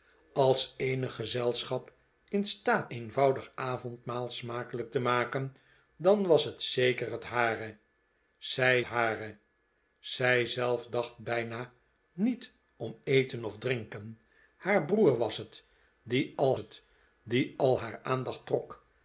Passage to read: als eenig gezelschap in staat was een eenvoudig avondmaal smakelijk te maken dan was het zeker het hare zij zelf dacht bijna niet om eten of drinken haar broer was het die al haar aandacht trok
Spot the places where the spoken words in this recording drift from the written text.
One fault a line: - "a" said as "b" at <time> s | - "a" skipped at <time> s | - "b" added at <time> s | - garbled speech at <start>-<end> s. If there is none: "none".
- "was een" skipped at 2.9 s
- "hare zij" added at 8.8 s
- "het die al" added at 16.5 s